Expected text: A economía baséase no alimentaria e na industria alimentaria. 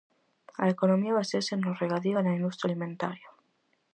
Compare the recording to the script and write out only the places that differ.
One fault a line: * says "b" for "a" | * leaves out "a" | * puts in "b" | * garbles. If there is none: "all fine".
* says "regadío" for "alimentaria"